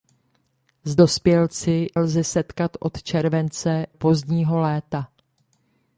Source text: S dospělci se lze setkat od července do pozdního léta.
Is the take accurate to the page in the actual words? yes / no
no